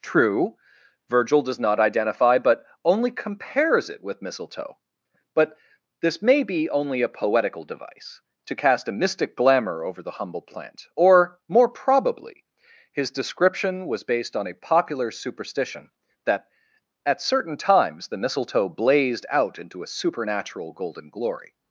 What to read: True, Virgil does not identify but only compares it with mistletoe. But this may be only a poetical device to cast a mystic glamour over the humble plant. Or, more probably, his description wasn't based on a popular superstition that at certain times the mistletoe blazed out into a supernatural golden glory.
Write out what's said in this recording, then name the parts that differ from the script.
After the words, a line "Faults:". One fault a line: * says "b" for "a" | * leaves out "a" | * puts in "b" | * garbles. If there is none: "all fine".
True, Virgil does not identify but only compares it with mistletoe. But this may be only a poetical device to cast a mystic glamour over the humble plant. Or, more probably, his description was based on a popular superstition that at certain times the mistletoe blazed out into a supernatural golden glory.
Faults:
* says "was" for "wasn't"